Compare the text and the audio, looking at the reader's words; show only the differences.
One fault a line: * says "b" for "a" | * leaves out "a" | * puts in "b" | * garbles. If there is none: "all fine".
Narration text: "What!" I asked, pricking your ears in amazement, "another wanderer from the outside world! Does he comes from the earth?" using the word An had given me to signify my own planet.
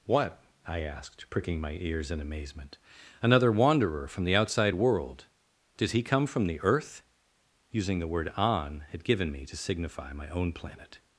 * says "my" for "your"
* says "come" for "comes"